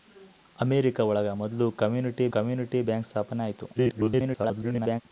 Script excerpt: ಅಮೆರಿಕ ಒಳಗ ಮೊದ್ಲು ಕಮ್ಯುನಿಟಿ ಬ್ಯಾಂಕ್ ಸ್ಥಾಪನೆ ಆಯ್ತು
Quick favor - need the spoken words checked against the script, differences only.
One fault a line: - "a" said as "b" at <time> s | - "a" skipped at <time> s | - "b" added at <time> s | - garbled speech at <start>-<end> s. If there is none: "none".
- "ಕಮ್ಯುನಿಟಿ" added at 2.4 s
- garbled speech at 3.8-5.0 s